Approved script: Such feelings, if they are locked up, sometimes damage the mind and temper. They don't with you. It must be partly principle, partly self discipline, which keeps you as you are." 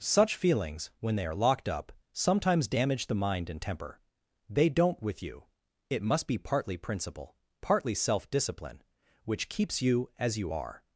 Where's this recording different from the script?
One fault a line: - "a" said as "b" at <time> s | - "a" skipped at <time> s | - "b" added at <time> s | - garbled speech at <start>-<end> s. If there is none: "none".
- "if" said as "when" at 1.0 s